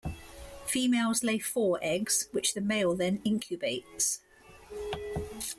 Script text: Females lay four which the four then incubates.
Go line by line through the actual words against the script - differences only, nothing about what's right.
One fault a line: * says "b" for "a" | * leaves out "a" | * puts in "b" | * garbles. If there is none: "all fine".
* puts in "eggs"
* says "male" for "four"